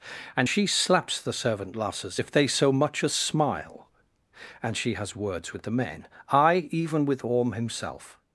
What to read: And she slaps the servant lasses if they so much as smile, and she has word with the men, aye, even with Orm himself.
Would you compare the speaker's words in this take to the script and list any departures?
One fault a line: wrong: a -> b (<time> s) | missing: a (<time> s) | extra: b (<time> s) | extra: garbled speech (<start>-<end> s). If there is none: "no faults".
wrong: word -> words (5.2 s)